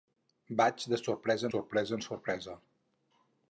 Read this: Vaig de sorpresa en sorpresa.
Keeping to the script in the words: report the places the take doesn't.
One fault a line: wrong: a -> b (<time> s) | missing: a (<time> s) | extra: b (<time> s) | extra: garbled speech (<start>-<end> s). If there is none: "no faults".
extra: sorpresa (1.5 s)